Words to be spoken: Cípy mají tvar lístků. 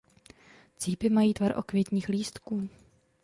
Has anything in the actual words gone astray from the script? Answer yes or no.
yes